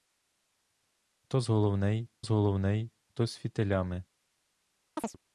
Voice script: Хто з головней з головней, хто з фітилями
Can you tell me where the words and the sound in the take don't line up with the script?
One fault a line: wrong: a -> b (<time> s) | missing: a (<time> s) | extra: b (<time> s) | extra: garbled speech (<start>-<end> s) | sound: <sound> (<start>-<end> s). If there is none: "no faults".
sound: chirp (5.0-5.2 s)